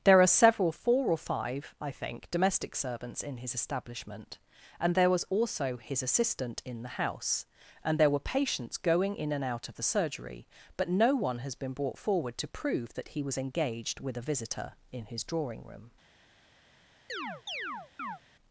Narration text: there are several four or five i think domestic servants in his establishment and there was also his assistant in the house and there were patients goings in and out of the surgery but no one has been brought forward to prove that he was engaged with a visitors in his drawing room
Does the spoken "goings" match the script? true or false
false